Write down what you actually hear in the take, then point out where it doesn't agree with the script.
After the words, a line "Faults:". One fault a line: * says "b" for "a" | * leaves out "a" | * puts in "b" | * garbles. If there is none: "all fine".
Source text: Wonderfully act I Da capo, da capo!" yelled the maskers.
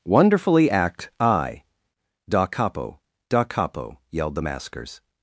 Wonderfully act I Da capo, da capo!" yelled the maskers.
Faults:
all fine